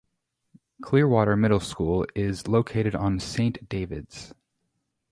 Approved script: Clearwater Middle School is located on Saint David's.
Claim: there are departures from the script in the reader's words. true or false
false